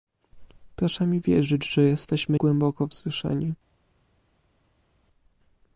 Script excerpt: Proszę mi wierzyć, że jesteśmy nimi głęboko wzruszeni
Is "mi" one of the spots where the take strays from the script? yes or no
no